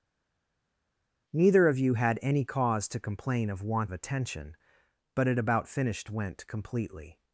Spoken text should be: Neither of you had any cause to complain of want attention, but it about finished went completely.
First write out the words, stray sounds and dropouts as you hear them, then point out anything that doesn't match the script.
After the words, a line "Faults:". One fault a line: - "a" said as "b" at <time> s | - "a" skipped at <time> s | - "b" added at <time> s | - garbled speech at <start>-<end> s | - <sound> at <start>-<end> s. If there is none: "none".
Neither of you had any cause to complain of want attention, but it about finished went completely.
Faults:
none